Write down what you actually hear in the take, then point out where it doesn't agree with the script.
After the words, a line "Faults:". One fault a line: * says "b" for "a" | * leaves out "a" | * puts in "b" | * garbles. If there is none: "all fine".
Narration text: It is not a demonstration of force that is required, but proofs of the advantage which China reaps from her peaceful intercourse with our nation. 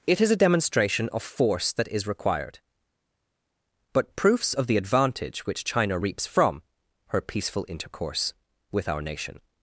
It is a demonstration of force that is required, but proofs of the advantage which China reaps from her peaceful intercourse with our nation.
Faults:
* leaves out "not"